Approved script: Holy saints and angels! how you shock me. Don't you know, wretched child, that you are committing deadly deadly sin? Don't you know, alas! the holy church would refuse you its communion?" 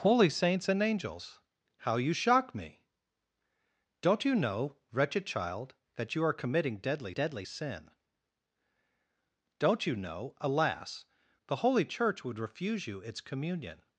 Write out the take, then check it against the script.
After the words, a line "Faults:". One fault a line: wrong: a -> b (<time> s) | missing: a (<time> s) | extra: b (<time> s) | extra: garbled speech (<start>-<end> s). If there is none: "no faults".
Holy saints and angels! how you shock me. Don't you know, wretched child, that you are committing deadly deadly sin? Don't you know, alas! the holy church would refuse you its communion?"
Faults:
no faults